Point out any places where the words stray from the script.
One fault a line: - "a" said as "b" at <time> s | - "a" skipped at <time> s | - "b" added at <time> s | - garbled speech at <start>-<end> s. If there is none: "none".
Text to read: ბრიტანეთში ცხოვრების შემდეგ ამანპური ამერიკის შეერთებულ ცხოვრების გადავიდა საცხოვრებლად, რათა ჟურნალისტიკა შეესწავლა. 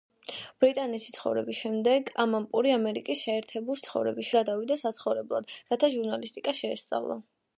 none